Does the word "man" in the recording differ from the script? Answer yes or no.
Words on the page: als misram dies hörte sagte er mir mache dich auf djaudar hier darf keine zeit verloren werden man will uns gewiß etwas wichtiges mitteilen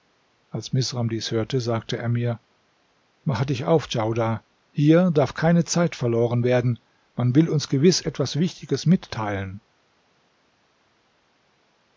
no